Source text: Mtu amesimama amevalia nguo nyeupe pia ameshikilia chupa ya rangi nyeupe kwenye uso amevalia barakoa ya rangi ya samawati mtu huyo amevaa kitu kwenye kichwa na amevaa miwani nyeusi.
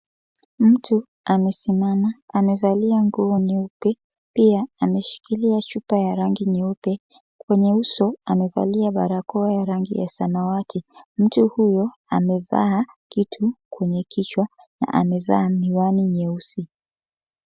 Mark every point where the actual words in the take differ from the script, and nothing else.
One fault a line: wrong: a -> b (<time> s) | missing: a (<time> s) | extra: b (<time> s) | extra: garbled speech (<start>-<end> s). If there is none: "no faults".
no faults